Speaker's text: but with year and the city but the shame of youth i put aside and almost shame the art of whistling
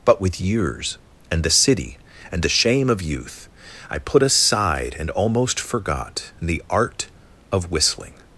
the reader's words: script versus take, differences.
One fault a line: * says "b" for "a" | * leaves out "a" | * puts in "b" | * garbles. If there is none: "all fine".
* says "years" for "year"
* says "and" for "but"
* says "forgot" for "shame"